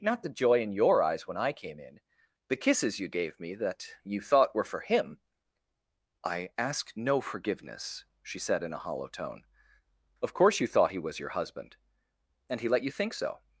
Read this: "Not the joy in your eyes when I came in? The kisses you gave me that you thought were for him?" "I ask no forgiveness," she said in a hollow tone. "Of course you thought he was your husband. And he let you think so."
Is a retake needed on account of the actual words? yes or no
no